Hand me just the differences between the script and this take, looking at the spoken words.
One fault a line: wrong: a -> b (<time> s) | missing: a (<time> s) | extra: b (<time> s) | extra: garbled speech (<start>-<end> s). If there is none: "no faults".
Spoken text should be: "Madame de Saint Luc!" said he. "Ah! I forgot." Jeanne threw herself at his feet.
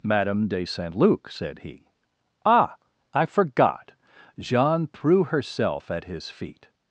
no faults